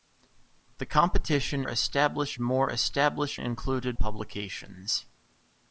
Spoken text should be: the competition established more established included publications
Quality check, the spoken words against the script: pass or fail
pass